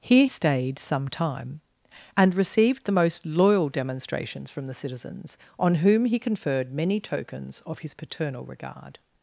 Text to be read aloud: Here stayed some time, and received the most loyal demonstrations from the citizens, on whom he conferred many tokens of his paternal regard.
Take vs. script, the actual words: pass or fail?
pass